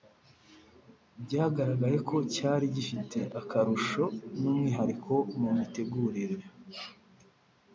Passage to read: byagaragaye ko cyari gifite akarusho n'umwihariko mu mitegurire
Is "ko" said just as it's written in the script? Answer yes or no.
yes